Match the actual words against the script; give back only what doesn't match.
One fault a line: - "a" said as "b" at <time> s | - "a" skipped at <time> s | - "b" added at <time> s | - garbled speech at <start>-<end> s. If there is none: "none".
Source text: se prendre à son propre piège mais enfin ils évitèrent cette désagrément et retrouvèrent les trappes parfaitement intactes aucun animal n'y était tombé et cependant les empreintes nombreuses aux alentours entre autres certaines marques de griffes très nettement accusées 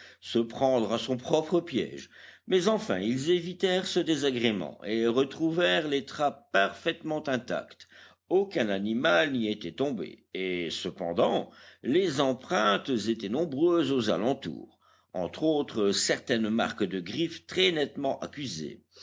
- "cette" said as "ce" at 3.9 s
- "étaient" added at 12.9 s